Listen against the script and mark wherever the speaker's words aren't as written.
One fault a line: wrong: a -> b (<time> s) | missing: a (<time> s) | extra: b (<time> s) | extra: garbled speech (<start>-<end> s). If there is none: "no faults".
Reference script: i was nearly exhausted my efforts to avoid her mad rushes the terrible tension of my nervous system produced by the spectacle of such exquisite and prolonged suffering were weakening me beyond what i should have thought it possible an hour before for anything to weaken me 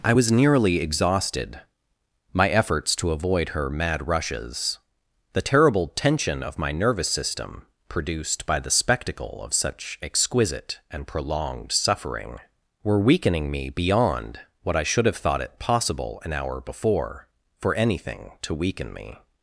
no faults